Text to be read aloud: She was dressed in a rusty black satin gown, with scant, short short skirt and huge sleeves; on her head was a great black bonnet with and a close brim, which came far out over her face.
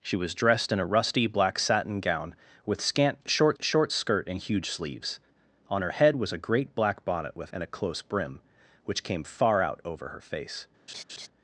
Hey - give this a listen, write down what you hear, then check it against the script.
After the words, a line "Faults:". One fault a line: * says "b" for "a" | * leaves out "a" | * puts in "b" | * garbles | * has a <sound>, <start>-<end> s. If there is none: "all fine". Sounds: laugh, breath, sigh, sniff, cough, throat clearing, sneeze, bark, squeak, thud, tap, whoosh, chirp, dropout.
She was dressed in a rusty black satin gown, with scant, short short skirt and huge sleeves; on her head was a great black bonnet with and a close brim, which came far out over her face.
Faults:
* has a laugh, 10.9-11.3 s